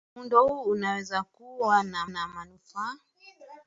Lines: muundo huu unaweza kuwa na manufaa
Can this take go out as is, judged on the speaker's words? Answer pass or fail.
fail